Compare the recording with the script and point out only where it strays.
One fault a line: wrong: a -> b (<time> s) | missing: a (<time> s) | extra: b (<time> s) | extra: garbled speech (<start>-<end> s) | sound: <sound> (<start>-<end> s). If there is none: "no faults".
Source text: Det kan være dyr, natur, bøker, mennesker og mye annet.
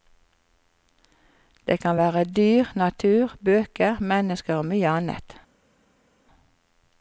no faults